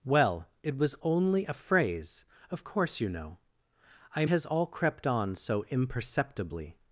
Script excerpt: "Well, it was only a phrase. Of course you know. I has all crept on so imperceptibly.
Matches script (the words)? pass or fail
pass